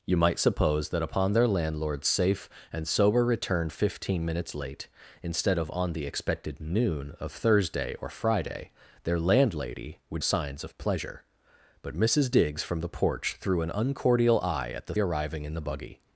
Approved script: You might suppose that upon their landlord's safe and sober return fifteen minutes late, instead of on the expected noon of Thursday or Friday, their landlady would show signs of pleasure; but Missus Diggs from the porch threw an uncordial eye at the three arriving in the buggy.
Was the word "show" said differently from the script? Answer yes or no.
yes